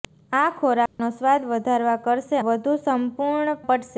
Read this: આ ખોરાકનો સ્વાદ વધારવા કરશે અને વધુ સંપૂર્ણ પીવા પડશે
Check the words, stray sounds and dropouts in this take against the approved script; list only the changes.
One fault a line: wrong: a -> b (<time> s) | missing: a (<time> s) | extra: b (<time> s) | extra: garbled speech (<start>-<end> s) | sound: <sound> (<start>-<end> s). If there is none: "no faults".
sound: dropout (0.9-1.0 s)
missing: અને (2.4 s)
missing: પીવા (3.6 s)